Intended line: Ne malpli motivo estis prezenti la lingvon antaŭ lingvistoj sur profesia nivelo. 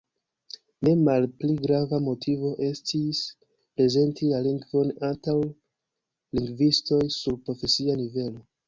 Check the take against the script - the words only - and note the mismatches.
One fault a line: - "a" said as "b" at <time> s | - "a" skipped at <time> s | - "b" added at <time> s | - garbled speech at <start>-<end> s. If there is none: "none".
- "grava" added at 1.6 s